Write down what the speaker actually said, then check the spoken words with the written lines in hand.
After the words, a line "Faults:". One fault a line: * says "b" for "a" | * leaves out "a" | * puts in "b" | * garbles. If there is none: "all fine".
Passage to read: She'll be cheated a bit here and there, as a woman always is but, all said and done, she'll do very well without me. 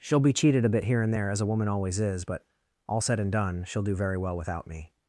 She'll be cheated a bit here and there, as a woman always is but, all said and done, she'll do very well without me.
Faults:
all fine